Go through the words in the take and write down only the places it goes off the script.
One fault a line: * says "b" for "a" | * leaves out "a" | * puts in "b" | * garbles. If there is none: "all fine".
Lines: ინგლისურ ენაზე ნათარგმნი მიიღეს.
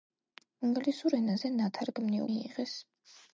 all fine